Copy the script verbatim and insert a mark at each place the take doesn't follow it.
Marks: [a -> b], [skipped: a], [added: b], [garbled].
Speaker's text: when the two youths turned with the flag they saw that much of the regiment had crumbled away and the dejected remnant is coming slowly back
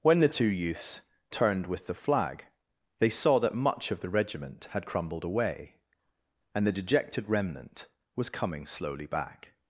when the two youths turned with the flag they saw that much of the regiment had crumbled away and the dejected remnant [is -> was] coming slowly back